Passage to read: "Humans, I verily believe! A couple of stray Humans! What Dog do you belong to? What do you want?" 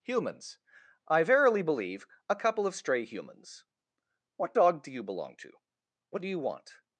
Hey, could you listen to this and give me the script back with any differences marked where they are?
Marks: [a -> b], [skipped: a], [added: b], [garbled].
"Humans, I verily believe! A couple of stray Humans! What Dog do you belong to? What do you want?"